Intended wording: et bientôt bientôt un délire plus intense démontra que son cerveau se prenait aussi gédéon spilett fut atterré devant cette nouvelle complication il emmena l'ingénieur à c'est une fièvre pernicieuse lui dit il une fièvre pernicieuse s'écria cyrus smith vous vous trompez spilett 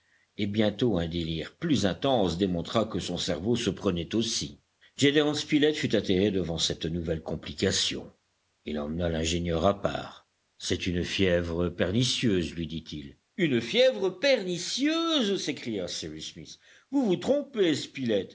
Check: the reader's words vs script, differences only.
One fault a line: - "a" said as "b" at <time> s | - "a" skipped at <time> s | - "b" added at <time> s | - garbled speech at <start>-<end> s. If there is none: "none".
- "bientôt" skipped at 1.0 s
- "part" added at 9.8 s